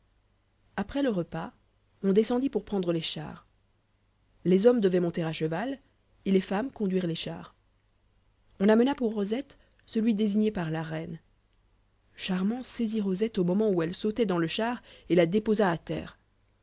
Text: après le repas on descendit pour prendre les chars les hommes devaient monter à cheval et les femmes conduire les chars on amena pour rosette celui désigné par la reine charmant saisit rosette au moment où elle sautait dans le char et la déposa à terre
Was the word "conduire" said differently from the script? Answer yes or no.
no